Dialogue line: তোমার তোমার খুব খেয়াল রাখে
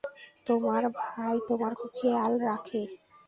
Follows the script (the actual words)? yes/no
no